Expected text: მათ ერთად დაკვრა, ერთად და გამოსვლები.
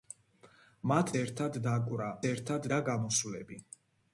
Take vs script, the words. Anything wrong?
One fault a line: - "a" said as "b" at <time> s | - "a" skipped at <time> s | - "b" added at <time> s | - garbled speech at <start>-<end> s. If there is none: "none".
none